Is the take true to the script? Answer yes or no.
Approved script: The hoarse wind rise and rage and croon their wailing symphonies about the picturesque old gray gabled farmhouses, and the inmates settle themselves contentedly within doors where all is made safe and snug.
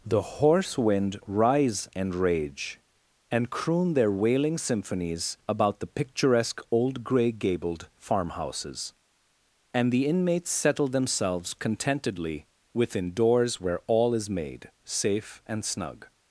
yes